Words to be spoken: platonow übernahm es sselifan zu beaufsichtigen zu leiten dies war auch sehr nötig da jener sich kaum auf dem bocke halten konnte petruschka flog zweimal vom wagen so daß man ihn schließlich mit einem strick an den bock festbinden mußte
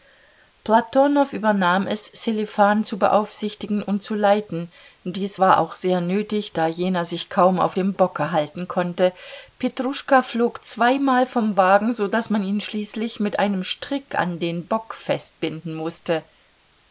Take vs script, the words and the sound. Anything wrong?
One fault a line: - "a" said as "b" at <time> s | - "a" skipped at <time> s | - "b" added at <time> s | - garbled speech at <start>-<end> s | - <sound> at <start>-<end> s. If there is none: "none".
- "und" added at 3.8 s